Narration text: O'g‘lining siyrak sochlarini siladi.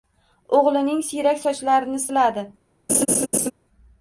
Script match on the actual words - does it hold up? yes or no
yes